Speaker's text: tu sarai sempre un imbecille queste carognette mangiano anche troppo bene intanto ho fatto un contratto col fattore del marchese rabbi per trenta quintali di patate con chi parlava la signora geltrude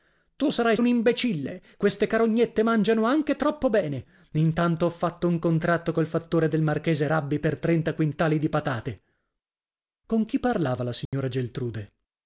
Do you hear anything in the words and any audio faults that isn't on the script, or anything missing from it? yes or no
yes